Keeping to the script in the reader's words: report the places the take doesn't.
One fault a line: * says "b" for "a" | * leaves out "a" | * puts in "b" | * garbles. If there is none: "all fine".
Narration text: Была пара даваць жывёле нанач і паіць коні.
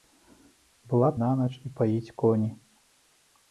* leaves out "пара даваць жывёле"